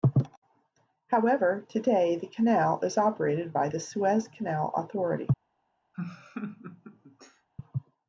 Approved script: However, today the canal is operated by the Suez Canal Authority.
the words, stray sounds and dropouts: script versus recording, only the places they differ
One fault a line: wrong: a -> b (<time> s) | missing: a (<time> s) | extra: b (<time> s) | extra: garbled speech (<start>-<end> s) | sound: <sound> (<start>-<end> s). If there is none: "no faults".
sound: laugh (5.9-7.5 s)